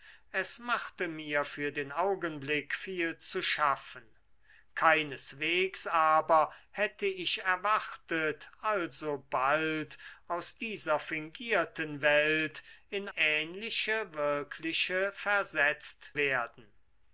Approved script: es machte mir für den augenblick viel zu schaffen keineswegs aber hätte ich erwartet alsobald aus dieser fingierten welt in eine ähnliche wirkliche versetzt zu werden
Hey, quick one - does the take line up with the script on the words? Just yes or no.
no